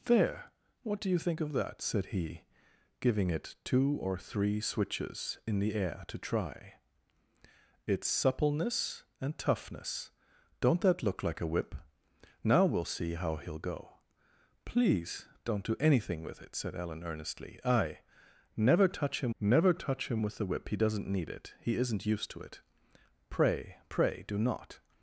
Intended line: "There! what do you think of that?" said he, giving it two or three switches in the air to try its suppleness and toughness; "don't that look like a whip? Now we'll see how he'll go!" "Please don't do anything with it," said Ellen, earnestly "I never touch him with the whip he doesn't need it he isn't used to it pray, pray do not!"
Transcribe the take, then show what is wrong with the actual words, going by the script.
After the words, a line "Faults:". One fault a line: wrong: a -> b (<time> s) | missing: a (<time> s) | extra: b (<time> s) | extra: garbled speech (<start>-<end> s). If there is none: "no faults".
"There! what do you think of that?" said he, giving it two or three switches in the air to try its suppleness and toughness; "don't that look like a whip? Now we'll see how he'll go!" "Please don't do anything with it," said Ellen, earnestly "I never touch him never touch him with the whip he doesn't need it he isn't used to it pray, pray do not!"
Faults:
extra: never touch him (19.4 s)